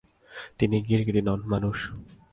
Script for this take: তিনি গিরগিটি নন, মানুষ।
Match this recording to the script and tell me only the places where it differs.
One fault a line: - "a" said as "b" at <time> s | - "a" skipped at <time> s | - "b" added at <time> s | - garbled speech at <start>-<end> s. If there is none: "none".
none